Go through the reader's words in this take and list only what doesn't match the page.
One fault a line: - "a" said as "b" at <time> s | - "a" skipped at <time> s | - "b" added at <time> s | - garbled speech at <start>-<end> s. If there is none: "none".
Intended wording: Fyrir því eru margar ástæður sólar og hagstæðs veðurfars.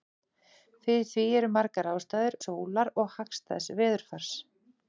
none